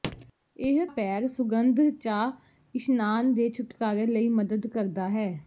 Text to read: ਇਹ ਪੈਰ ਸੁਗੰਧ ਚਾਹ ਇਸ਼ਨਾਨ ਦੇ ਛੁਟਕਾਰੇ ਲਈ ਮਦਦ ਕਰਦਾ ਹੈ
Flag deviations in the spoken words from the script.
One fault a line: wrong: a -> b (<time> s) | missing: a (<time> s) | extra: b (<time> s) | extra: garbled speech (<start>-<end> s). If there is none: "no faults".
no faults